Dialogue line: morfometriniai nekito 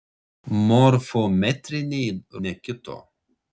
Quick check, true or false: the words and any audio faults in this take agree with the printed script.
true